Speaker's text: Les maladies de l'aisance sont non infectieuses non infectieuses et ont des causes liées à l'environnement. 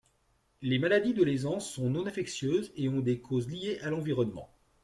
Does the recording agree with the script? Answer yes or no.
no